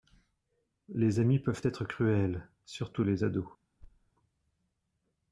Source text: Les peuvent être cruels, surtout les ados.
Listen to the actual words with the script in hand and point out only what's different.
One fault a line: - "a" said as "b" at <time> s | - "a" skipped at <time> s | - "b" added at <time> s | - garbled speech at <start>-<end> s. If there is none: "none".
- "amis" added at 1.2 s